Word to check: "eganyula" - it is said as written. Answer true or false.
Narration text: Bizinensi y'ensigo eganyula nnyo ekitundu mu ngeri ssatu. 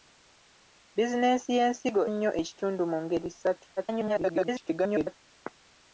false